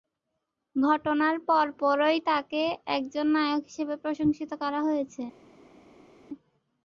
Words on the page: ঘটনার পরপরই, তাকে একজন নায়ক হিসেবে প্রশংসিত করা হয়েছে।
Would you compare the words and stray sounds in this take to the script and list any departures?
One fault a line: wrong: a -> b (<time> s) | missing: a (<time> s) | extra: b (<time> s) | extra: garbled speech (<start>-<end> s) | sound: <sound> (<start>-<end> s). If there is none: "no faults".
no faults